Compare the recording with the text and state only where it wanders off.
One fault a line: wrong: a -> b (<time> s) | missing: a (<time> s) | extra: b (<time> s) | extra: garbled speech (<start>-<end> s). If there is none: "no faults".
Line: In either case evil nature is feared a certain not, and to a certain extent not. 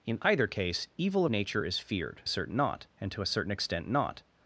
no faults